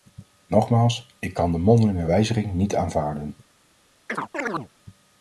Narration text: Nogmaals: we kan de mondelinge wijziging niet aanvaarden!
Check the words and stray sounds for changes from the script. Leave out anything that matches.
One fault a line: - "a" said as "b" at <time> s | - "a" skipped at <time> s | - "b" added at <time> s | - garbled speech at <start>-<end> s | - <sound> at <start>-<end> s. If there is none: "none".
- "we" said as "ik" at 1.2 s
- chirp at 4.1-4.7 s